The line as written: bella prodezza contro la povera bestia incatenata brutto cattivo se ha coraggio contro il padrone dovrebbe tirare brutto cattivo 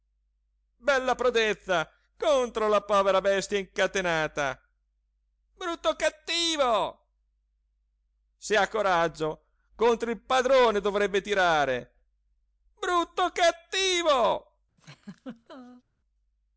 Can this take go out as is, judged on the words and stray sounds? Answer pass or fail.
fail